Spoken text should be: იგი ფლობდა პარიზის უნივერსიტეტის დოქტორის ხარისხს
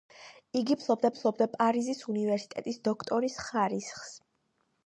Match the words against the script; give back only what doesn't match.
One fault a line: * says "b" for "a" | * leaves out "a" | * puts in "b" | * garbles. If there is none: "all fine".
* puts in "ფლობდა"